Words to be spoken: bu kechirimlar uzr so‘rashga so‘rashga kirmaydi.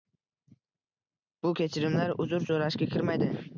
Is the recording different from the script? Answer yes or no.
yes